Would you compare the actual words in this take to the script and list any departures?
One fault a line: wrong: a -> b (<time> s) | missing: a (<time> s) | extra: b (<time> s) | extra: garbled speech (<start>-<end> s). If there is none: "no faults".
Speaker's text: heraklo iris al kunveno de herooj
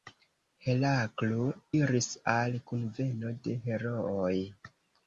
no faults